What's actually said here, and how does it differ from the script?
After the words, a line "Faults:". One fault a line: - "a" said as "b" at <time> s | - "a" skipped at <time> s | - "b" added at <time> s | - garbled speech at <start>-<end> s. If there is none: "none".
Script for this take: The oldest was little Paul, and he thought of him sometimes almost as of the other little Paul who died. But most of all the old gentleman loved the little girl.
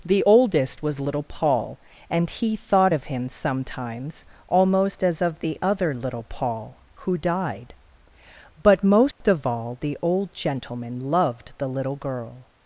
The oldest was little Paul, and he thought of him sometimes almost as of the other little Paul who died. But most of all the old gentleman loved the little girl.
Faults:
none